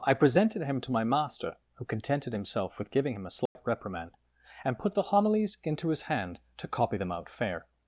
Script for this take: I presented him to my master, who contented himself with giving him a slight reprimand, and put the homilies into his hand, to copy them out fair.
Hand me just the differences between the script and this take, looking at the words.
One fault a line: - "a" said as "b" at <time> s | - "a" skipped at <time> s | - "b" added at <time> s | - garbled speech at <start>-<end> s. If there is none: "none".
none